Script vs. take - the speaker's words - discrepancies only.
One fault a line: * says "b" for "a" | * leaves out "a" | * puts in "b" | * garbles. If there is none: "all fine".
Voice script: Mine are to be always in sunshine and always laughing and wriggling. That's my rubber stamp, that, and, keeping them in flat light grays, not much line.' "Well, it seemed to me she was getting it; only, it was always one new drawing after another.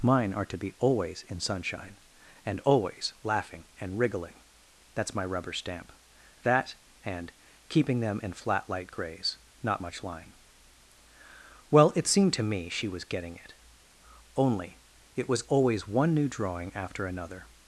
all fine